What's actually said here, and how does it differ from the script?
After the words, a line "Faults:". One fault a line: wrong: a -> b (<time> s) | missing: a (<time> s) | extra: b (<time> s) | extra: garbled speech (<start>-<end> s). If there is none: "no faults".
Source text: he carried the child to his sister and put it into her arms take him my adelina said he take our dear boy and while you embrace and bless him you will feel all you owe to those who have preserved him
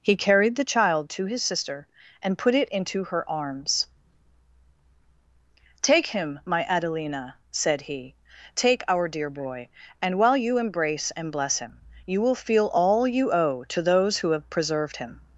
he carried the child to his sister and put it into her arms take him my adelina said he take our dear boy and while you embrace and bless him you will feel all you owe to those who have preserved him
Faults:
no faults